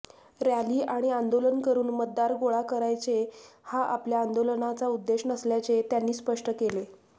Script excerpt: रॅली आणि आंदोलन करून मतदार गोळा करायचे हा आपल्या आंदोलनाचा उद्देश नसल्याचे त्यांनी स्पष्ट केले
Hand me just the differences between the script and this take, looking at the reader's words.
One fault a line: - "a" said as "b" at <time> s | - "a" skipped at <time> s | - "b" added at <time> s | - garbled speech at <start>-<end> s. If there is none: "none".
none